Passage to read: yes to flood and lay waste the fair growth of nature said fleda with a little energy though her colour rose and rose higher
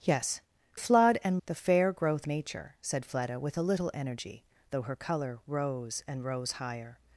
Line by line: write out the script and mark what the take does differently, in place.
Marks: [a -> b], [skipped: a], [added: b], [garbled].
yes [skipped: to] flood and [skipped: lay waste] the fair growth [skipped: of] nature said fleda with a little energy though her colour rose and rose higher